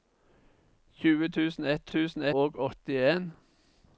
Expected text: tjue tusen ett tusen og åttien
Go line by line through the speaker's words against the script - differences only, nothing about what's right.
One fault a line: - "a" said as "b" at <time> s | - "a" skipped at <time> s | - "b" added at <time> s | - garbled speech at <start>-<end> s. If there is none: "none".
none